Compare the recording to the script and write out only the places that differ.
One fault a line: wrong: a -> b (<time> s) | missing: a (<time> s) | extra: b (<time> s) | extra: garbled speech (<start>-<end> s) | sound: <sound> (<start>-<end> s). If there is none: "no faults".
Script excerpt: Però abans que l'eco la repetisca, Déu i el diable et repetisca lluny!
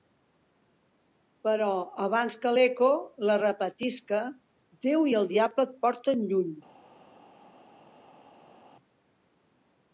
wrong: repetisca -> porten (5.9 s)